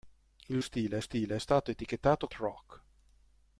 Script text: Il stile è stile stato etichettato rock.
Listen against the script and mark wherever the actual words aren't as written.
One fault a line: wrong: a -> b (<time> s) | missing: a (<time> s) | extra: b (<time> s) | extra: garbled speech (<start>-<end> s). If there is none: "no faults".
no faults